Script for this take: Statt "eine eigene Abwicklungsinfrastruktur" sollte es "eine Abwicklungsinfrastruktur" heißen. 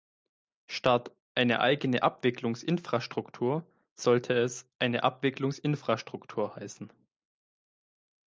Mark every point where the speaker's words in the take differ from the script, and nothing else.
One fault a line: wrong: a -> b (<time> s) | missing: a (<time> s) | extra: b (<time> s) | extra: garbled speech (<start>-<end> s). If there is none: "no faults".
no faults